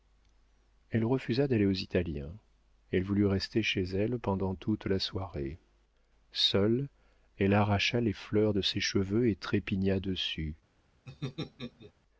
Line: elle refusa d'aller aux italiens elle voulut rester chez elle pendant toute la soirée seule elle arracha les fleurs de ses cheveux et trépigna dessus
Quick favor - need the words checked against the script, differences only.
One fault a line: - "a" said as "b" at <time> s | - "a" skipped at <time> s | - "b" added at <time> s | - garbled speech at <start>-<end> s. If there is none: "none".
none